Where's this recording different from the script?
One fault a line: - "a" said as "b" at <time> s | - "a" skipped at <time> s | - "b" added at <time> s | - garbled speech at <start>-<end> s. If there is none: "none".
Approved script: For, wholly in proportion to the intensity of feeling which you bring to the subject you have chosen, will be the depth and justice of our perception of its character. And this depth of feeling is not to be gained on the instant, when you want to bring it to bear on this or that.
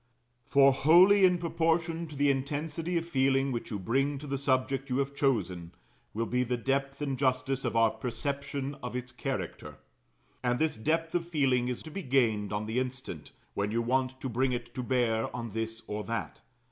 - "not" skipped at 11.8 s